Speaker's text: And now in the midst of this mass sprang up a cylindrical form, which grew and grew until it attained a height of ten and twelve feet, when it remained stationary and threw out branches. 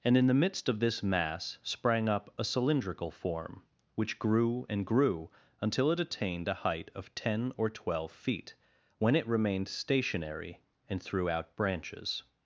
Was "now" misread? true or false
true